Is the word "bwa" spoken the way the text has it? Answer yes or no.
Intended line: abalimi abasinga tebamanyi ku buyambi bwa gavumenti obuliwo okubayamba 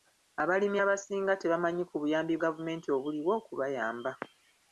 no